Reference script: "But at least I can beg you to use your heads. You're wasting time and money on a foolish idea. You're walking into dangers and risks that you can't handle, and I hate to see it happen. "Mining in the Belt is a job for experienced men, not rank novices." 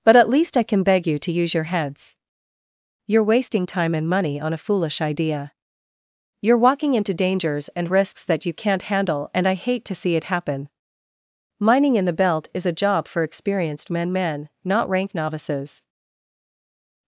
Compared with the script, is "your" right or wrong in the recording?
right